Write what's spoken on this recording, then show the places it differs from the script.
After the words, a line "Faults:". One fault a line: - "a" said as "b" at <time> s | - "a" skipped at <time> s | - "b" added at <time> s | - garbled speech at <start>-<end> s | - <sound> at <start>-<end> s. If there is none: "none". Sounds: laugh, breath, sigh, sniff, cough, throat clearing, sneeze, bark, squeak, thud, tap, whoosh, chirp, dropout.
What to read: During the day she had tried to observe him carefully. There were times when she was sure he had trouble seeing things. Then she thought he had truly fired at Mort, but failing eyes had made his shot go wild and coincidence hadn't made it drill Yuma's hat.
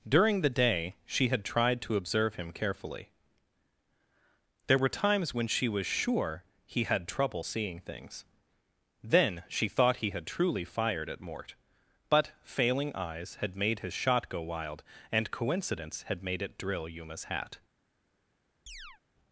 During the day she had tried to observe him carefully. There were times when she was sure he had trouble seeing things. Then she thought he had truly fired at Mort, but failing eyes had made his shot go wild and coincidence had made it drill Yuma's hat.
Faults:
- "hadn't" said as "had" at 16.0 s
- chirp at 18.7-19.0 s